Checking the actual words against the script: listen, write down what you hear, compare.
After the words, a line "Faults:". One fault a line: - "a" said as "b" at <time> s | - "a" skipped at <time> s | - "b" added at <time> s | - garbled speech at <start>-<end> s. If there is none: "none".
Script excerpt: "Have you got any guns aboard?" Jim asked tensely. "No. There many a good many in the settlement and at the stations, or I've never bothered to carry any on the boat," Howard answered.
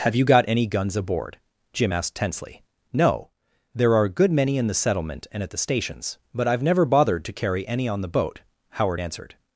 "Have you got any guns aboard?" Jim asked tensely. "No. There are a good many in the settlement and at the stations, but I've never bothered to carry any on the boat," Howard answered.
Faults:
- "many" said as "are" at 3.9 s
- "or" said as "but" at 6.3 s